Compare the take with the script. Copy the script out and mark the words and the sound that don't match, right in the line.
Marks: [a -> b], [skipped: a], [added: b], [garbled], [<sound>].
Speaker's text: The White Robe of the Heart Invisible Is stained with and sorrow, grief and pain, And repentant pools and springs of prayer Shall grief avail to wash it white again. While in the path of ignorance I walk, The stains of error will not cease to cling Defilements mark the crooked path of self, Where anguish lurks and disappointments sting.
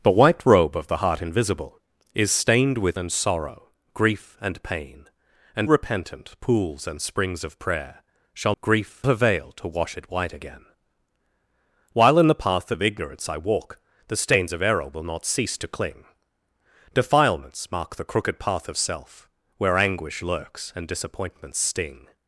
The White Robe of the Heart Invisible Is stained with and sorrow, grief and pain, And repentant pools and springs of prayer Shall grief avail to wash it white again. While in the path of ignorance I walk, The stains of error will not cease to cling Defilements mark the crooked path of self, Where anguish lurks and disappointments sting.